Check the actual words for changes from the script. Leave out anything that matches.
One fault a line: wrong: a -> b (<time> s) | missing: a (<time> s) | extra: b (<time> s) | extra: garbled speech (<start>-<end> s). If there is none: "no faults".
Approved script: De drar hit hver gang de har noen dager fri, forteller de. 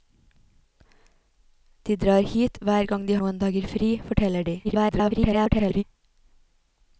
missing: har (3.2 s)
extra: garbled speech (4.6-5.8 s)